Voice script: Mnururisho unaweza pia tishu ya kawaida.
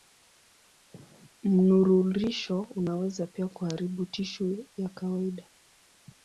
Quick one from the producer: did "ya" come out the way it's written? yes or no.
yes